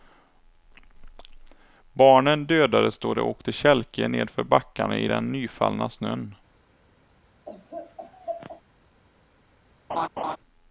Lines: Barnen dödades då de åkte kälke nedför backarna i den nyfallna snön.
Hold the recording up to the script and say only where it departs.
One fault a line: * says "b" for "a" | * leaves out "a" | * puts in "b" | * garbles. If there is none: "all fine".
all fine